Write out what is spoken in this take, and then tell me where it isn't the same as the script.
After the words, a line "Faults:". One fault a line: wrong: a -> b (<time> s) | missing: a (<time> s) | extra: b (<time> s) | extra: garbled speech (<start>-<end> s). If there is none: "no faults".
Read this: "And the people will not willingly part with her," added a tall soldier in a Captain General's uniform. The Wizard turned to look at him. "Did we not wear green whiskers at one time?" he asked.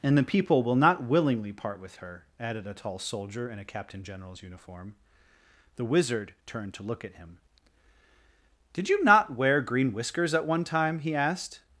"And the people will not willingly part with her," added a tall soldier in a Captain General's uniform. The Wizard turned to look at him. "Did you not wear green whiskers at one time?" he asked.
Faults:
wrong: we -> you (8.9 s)